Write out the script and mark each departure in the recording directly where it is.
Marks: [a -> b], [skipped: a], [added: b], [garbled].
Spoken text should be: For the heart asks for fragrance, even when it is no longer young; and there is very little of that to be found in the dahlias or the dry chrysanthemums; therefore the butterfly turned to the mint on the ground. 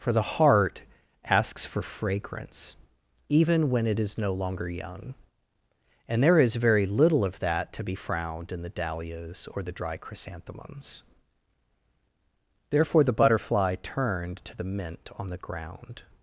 For the heart asks for fragrance, even when it is no longer young; and there is very little of that to be [found -> frowned] in the dahlias or the dry chrysanthemums; therefore the butterfly turned to the mint on the ground.